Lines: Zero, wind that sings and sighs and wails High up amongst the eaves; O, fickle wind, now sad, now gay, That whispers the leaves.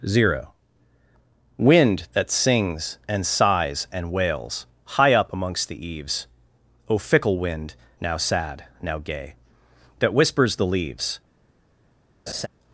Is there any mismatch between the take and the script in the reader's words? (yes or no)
no